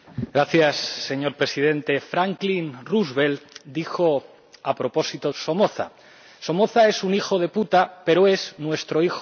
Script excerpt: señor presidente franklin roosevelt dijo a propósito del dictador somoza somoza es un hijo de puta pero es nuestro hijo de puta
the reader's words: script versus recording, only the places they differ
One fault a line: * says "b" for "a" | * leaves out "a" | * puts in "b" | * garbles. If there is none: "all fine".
* leaves out "del dictador"